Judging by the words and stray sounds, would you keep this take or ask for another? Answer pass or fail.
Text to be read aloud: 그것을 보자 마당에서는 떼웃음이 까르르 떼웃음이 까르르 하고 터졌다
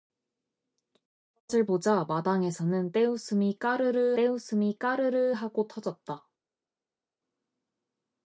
pass